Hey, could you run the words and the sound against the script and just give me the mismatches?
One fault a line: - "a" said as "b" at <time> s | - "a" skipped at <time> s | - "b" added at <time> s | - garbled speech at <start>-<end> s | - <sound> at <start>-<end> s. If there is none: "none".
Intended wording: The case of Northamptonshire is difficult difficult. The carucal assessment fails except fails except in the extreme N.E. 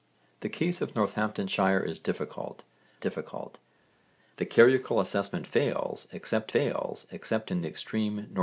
none